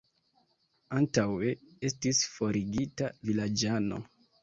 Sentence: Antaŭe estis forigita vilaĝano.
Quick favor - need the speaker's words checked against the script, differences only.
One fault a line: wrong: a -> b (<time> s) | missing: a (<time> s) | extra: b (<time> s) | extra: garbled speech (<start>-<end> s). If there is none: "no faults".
no faults